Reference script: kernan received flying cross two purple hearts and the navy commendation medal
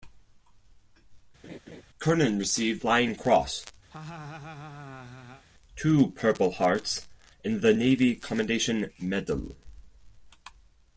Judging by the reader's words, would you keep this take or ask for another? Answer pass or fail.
pass